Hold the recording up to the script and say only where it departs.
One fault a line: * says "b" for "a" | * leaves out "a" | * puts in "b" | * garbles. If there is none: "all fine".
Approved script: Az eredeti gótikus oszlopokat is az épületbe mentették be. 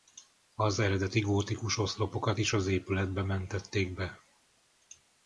all fine